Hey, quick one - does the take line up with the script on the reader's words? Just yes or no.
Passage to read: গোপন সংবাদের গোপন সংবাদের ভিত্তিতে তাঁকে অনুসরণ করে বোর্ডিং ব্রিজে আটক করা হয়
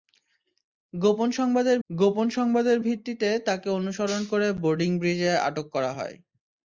yes